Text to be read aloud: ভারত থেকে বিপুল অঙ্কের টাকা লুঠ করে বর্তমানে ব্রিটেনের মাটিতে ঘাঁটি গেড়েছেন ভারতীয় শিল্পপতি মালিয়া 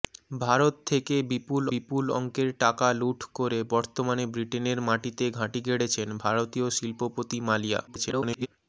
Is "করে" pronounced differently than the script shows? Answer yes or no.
no